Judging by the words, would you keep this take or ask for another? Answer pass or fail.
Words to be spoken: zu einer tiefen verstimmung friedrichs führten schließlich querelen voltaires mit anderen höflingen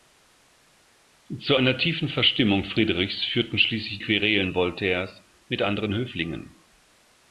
pass